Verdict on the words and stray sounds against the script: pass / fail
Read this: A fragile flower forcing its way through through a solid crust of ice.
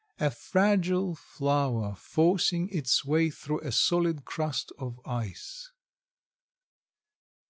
fail